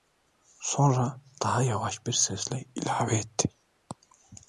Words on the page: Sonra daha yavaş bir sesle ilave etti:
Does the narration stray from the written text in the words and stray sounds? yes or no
no